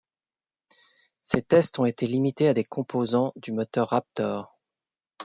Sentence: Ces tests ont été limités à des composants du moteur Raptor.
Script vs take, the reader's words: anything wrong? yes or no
no